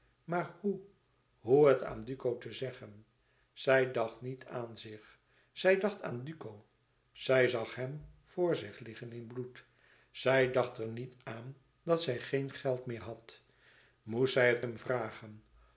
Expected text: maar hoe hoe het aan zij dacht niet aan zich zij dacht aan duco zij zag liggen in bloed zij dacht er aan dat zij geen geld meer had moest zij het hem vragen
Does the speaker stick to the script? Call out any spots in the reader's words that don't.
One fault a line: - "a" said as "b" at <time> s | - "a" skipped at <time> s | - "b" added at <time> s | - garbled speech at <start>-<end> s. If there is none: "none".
- "duco te zeggen" added at 2.0 s
- "hem voor zich" added at 7.8 s
- "niet" added at 10.9 s